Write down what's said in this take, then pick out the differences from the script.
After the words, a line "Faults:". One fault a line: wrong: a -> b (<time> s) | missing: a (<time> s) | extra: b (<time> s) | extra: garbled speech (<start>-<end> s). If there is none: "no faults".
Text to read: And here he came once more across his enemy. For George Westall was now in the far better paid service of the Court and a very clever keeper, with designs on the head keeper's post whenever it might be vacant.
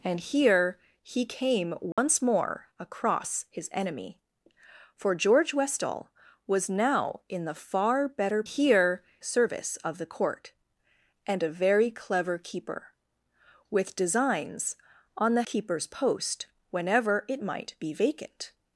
And here he came once more across his enemy. For George Westall was now in the far better here service of the Court and a very clever keeper, with designs on the keeper's post whenever it might be vacant.
Faults:
wrong: paid -> here (8.4 s)
missing: head (15.4 s)